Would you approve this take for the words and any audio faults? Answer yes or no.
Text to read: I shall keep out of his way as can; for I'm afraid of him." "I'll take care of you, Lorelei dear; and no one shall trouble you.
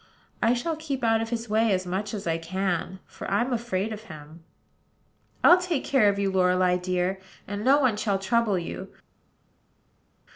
no